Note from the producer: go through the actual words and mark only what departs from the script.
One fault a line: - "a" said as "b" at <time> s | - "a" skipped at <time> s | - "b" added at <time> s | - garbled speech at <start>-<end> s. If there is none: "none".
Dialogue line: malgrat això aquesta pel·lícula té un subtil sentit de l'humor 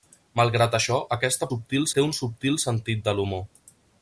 - "pel·lícula" said as "subtil" at 1.5 s